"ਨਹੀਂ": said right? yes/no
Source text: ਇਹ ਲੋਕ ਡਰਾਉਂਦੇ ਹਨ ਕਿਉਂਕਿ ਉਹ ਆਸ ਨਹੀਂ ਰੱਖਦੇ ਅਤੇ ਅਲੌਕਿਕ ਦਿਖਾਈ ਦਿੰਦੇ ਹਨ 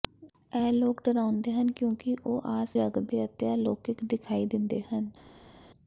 no